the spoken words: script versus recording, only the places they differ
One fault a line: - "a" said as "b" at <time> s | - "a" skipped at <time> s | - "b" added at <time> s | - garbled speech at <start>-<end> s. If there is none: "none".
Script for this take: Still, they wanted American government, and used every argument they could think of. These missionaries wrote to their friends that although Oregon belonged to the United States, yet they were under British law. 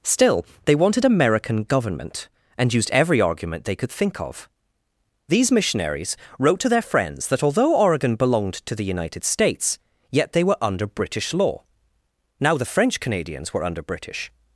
- "Now the French Canadians were under British" added at 12.4 s